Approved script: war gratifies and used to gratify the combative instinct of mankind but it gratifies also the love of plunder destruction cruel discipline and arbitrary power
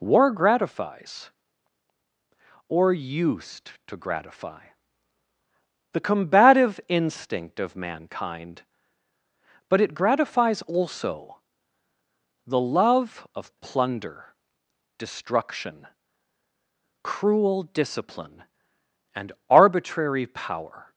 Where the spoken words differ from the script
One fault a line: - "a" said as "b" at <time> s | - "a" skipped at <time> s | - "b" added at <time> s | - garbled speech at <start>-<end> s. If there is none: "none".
- "and" said as "or" at 2.7 s